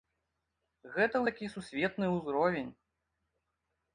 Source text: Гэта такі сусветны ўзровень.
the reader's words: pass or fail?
pass